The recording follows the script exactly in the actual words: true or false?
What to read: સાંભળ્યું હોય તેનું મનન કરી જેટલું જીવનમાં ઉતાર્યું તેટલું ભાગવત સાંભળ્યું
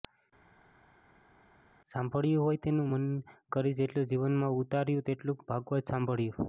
true